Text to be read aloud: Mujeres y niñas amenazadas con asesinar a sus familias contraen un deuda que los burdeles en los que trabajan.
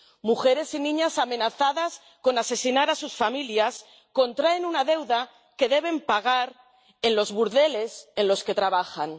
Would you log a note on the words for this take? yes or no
yes